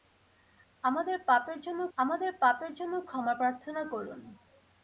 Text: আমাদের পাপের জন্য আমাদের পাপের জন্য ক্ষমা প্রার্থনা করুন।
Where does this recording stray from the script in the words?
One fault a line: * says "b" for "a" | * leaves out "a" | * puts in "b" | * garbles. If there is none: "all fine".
all fine